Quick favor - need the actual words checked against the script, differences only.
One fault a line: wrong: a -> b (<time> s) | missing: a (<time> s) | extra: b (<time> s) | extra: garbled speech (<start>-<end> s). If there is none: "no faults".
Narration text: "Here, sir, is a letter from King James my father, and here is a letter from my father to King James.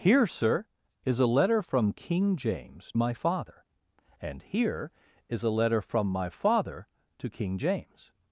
no faults